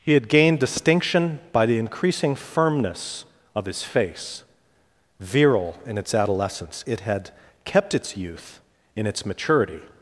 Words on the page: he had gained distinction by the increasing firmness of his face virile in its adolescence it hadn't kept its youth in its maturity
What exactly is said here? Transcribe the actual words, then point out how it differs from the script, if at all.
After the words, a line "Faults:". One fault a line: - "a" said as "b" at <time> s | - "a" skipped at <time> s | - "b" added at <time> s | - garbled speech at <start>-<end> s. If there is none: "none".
he had gained distinction by the increasing firmness of his face virile in its adolescence it had kept its youth in its maturity
Faults:
- "hadn't" said as "had" at 7.0 s